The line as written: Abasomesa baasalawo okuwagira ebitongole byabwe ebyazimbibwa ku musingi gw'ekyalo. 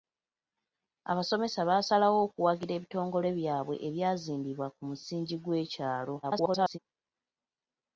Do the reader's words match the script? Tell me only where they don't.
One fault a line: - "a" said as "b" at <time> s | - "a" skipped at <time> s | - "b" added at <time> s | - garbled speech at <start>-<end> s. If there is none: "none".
- garbled speech at 6.2-6.8 s